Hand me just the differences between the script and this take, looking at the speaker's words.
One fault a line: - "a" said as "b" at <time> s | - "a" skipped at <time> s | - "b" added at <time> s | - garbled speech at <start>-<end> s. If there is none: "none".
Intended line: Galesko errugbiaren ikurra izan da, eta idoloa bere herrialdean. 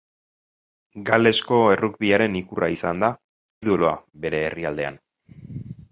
- "eta" skipped at 3.1 s